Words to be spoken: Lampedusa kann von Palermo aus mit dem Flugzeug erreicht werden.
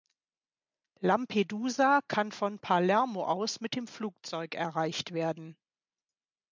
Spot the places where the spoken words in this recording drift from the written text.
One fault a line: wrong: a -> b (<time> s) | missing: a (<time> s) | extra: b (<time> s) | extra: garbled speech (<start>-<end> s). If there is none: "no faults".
no faults